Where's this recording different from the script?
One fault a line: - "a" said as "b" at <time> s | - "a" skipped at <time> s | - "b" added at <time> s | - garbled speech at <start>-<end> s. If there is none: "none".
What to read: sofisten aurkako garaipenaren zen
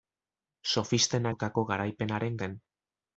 none